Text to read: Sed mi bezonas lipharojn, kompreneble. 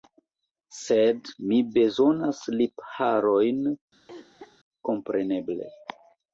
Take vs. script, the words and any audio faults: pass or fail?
fail